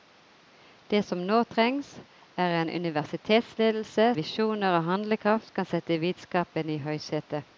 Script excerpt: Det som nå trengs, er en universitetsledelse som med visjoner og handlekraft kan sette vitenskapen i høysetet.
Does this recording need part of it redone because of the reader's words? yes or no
yes